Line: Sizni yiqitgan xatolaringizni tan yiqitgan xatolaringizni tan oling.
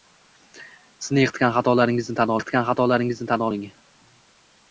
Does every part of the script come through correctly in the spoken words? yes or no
yes